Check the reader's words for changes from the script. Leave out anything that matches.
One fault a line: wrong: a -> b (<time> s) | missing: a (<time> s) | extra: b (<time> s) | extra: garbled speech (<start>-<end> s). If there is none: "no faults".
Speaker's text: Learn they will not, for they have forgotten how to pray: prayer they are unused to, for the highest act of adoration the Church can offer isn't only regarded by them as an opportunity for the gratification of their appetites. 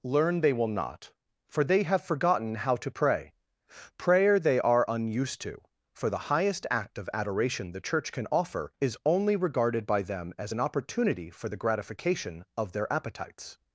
wrong: isn't -> is (8.8 s)